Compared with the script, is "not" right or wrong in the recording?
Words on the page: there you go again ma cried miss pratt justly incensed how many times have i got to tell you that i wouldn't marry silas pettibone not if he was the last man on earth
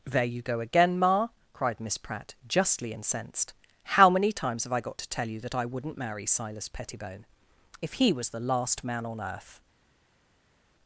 wrong